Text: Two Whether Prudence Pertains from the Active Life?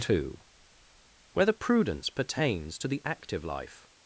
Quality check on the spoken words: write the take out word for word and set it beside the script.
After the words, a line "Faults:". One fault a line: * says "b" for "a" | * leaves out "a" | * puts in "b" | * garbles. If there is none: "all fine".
Two Whether Prudence Pertains to the Active Life?
Faults:
* says "to" for "from"